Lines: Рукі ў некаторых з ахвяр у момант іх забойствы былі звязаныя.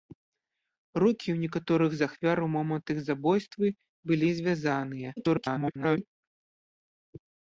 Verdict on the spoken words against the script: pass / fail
fail